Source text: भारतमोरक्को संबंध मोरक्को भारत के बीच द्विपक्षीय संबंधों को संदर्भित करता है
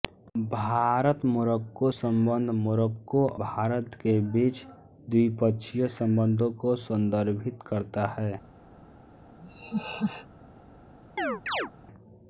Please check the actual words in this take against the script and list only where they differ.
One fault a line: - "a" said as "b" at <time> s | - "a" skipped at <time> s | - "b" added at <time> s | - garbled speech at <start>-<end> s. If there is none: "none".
none